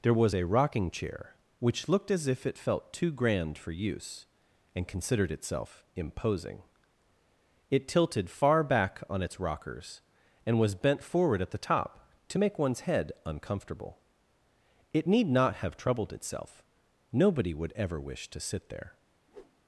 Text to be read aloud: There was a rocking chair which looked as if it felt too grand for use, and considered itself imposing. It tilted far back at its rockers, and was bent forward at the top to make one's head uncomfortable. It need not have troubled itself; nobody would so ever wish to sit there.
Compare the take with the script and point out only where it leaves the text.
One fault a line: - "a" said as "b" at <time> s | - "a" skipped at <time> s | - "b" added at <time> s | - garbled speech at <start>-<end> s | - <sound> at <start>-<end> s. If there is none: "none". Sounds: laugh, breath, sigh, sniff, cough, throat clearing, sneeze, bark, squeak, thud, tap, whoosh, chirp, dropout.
- "at" said as "on" at 9.1 s
- "so" skipped at 17.7 s
- whoosh at 19.3-19.6 s